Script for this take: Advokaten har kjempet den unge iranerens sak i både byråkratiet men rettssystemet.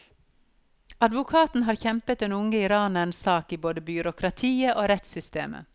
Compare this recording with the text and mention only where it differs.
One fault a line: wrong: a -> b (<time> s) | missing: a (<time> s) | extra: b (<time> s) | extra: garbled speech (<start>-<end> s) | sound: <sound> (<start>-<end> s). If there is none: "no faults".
wrong: men -> og (4.8 s)